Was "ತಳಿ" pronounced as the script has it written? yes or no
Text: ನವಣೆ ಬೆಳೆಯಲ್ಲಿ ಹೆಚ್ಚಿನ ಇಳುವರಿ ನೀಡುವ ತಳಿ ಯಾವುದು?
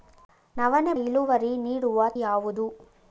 no